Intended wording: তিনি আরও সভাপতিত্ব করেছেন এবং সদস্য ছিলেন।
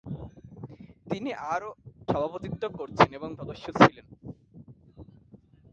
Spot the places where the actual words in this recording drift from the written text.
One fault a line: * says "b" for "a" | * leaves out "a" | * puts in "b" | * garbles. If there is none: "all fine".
all fine